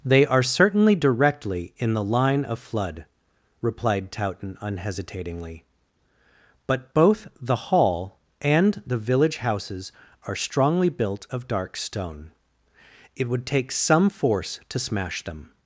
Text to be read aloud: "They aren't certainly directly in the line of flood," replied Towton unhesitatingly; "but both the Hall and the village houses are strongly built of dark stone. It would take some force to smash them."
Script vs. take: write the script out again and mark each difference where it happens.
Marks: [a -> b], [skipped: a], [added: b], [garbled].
"They [aren't -> are] certainly directly in the line of flood," replied Towton unhesitatingly; "but both the Hall and the village houses are strongly built of dark stone. It would take some force to smash them."